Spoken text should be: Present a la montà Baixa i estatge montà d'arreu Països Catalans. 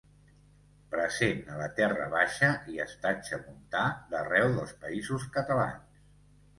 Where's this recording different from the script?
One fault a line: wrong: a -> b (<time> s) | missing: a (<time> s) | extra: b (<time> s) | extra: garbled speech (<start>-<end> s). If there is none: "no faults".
wrong: montà -> terra (1.8 s)
extra: dels (4.6 s)